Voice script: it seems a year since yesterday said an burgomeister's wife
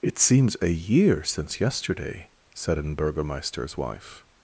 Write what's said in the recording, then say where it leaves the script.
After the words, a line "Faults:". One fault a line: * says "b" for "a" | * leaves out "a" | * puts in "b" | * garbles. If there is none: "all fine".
it seems a year since yesterday said an burgomeister's wife
Faults:
all fine